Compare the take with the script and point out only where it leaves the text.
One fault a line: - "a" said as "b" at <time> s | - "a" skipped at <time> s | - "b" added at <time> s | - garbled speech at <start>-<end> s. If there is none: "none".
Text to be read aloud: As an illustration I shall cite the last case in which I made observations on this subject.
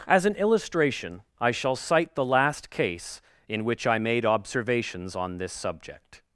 none